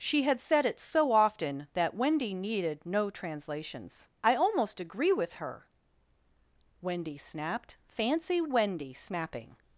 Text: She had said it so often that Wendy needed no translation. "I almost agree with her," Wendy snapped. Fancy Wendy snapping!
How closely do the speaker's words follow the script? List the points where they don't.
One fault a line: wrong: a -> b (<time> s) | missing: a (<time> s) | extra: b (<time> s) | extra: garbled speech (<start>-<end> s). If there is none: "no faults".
wrong: translation -> translations (3.1 s)